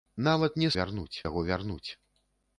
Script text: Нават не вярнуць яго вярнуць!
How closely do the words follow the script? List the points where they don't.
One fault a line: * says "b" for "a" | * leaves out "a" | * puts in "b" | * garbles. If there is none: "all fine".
all fine